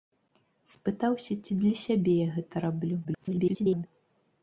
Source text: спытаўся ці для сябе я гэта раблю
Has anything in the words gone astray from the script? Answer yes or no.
yes